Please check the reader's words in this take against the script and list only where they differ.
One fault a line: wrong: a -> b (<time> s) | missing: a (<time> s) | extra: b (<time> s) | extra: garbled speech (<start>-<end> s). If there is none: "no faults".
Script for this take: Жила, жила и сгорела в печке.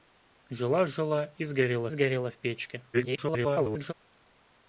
extra: сгорела (1.9 s)
extra: garbled speech (2.9-3.9 s)